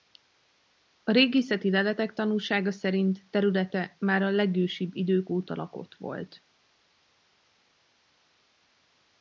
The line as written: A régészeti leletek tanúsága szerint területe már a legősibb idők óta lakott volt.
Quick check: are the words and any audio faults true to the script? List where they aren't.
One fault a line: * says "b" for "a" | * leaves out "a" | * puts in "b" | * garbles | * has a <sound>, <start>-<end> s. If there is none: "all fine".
all fine